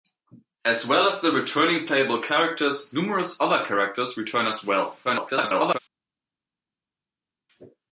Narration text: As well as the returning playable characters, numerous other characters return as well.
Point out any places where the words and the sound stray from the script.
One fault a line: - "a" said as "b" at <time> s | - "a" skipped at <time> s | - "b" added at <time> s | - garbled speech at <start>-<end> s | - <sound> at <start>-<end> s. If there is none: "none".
- garbled speech at 5.0-5.8 s